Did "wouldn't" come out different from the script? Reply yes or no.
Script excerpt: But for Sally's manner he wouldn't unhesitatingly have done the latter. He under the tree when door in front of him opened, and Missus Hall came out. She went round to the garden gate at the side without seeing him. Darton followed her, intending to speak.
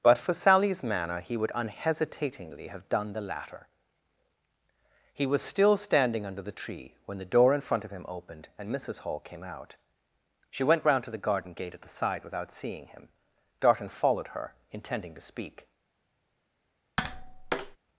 yes